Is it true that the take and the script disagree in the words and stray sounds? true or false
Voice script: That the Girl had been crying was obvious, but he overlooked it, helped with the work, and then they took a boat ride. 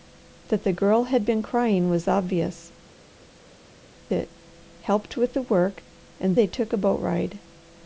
true